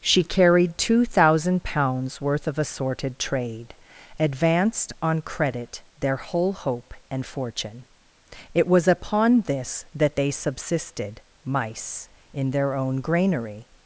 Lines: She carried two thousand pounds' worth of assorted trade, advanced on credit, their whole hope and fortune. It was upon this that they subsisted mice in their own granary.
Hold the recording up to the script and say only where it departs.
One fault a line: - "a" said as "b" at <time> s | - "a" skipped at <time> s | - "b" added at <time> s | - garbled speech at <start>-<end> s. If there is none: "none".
none